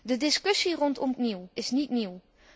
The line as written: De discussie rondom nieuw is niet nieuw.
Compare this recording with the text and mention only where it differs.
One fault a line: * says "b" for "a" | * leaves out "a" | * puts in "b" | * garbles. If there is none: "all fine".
all fine